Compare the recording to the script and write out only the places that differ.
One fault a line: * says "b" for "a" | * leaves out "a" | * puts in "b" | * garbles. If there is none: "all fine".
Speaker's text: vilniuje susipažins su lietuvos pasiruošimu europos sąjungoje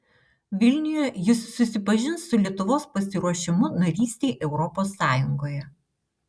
* puts in "jis"
* puts in "narystei"